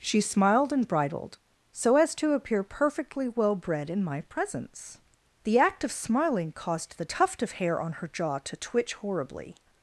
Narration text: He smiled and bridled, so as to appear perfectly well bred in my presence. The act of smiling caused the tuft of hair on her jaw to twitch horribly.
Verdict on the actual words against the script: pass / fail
fail